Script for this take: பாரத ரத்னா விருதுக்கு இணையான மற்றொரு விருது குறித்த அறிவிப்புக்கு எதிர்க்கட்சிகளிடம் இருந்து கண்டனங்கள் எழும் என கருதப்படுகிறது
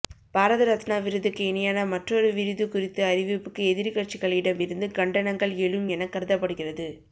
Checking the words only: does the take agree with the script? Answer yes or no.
yes